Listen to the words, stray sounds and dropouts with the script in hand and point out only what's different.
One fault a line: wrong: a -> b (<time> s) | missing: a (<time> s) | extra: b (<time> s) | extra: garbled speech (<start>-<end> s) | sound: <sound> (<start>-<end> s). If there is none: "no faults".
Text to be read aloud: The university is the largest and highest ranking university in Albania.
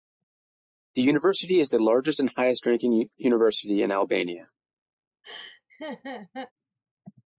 sound: laugh (5.2-6.5 s)